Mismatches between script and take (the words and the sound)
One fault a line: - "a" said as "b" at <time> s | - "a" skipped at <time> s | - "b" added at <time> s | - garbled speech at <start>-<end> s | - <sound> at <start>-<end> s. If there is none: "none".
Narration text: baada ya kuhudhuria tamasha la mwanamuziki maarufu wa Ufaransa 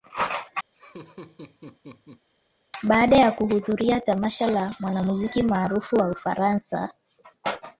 - laugh at 0.7-2.3 s